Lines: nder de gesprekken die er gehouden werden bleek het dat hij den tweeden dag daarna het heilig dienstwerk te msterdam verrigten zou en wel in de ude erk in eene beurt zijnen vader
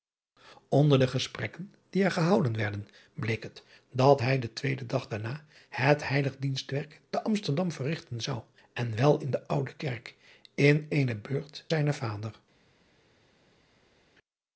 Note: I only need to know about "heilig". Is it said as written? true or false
true